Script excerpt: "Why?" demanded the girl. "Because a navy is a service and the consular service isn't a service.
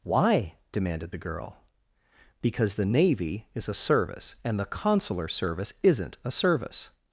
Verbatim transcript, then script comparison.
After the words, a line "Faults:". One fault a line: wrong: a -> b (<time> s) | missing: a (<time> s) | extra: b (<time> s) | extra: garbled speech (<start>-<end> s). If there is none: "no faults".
"Why?" demanded the girl. "Because the navy is a service and the consular service isn't a service.
Faults:
wrong: a -> the (2.7 s)